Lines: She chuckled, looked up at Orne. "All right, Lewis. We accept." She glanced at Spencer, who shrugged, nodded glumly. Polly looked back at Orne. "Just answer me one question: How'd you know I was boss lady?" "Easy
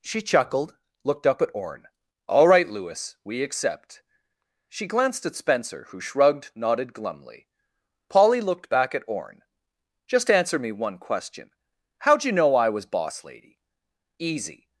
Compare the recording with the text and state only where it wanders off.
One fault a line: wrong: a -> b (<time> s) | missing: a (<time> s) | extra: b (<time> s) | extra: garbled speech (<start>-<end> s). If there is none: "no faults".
no faults